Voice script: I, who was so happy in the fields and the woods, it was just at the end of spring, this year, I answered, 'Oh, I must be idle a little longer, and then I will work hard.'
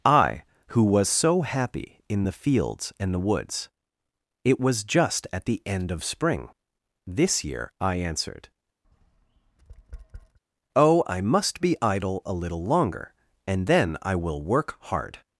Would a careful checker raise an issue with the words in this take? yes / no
no